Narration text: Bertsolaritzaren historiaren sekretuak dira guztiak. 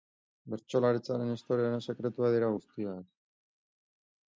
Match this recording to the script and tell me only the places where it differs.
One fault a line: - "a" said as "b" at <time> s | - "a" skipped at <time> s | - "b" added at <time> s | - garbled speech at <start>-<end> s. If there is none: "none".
none